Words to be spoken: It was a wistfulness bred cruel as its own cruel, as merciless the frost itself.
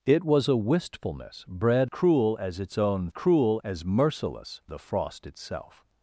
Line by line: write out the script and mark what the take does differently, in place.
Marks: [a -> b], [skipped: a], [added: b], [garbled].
It was a wistfulness bred cruel as its own cruel, as merciless the frost itself.